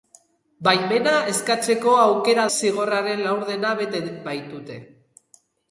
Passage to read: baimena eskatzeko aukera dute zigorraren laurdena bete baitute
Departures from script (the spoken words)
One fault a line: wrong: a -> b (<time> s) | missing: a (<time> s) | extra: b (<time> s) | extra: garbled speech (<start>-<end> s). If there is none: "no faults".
missing: dute (2.5 s)